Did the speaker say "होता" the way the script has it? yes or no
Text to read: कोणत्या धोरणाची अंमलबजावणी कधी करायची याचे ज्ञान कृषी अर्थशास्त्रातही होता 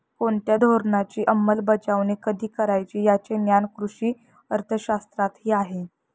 no